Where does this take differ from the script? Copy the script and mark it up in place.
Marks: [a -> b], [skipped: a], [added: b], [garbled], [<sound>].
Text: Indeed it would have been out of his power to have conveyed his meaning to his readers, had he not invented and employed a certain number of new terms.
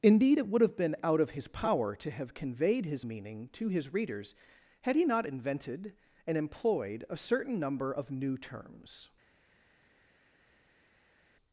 Indeed it would have been out of his power to have conveyed his meaning to his readers, had he not invented and employed a certain number of new terms.